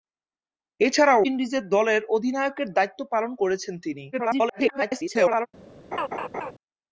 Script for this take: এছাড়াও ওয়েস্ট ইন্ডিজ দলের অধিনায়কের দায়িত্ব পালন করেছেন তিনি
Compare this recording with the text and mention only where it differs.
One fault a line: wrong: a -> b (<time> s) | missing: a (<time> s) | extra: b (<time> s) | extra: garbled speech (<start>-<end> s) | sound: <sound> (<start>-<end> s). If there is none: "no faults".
missing: ওয়েস্ট (1.2 s)
extra: garbled speech (4.1-5.5 s)
sound: laugh (5.9-6.5 s)